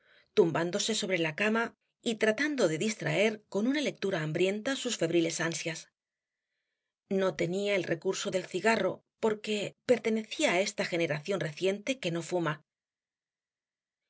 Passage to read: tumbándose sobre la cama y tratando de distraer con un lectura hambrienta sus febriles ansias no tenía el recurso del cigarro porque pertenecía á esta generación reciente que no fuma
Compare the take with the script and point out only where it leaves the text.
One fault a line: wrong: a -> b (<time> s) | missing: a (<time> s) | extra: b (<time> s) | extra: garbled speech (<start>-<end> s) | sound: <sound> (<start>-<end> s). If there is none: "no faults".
wrong: un -> una (3.7 s)